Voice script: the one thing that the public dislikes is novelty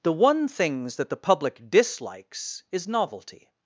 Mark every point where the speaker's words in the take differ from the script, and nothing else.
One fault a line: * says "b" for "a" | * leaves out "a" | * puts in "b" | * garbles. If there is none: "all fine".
* says "things" for "thing"